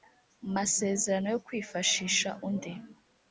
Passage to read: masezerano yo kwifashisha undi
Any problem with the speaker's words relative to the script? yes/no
no